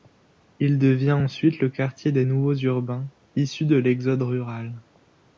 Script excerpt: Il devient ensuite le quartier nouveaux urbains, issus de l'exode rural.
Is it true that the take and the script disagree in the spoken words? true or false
true